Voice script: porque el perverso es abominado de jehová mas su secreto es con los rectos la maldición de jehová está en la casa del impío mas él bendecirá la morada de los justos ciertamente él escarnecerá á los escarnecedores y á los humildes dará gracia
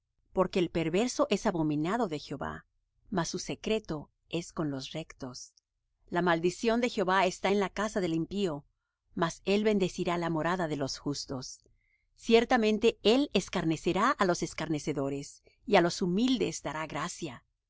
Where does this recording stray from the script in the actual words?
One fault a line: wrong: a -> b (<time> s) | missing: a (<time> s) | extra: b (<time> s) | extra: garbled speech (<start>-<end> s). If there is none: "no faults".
no faults